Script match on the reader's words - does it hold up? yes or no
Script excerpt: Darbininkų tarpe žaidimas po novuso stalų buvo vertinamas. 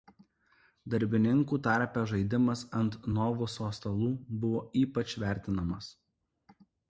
no